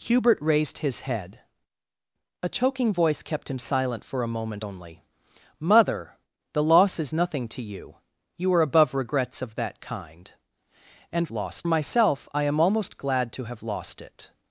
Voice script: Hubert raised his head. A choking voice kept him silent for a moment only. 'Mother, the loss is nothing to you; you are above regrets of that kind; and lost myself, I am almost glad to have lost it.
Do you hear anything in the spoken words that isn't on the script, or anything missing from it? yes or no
no